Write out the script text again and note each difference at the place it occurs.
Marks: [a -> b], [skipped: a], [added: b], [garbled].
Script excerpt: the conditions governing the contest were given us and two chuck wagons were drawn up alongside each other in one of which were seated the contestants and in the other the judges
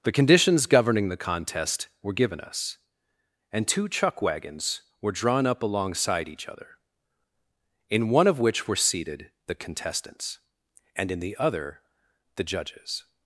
the conditions governing the contest were given us and two chuck wagons were drawn up alongside each other in one of which were seated the contestants and in the other the judges